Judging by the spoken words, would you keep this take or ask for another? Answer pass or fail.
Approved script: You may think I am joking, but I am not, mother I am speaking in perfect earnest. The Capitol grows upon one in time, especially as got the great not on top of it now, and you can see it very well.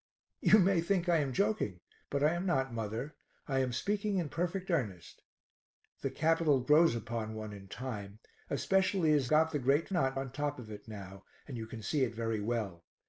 pass